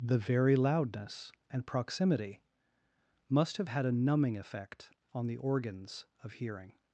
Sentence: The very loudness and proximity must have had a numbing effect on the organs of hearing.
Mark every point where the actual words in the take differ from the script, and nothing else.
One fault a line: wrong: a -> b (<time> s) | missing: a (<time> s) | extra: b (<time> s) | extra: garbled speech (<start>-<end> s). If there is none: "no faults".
no faults